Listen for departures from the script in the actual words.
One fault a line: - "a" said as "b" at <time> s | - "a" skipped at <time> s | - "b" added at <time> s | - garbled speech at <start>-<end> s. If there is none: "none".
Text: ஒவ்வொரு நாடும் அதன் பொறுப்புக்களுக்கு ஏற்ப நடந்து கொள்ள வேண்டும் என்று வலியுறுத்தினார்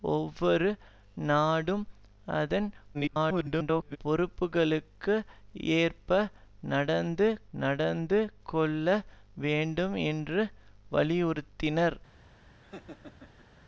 - garbled speech at 2.9-4.0 s
- "நடந்து" added at 7.6 s